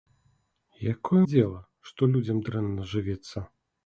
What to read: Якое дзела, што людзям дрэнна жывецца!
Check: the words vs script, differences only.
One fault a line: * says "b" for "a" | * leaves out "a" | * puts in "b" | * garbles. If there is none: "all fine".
all fine